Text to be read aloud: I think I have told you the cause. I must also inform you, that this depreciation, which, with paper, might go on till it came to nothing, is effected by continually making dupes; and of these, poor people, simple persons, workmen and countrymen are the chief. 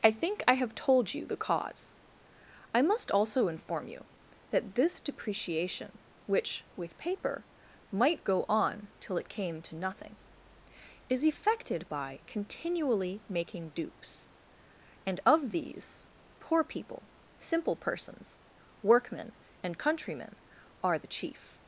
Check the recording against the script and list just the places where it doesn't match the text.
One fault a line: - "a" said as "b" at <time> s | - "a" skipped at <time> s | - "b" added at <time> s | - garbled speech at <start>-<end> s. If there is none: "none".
none